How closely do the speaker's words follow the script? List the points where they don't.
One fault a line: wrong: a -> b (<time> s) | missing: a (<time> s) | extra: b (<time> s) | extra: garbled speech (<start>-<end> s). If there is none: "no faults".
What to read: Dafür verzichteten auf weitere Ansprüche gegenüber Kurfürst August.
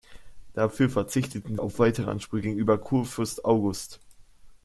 no faults